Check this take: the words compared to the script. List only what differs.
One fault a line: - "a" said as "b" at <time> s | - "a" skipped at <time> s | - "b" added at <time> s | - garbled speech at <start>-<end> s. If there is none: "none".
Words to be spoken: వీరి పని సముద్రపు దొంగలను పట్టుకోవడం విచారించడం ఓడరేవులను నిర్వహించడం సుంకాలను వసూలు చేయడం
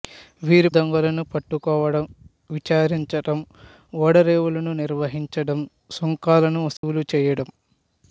- "పని సముద్రపు" skipped at 0.7 s